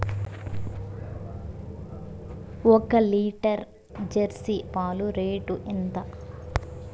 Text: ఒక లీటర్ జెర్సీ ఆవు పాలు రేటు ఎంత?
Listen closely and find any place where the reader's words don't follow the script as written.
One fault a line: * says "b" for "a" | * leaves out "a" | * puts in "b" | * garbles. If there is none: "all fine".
* leaves out "ఆవు"